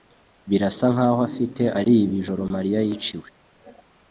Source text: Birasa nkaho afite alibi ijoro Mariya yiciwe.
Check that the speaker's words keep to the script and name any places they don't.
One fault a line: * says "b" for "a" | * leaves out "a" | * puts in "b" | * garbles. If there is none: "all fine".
all fine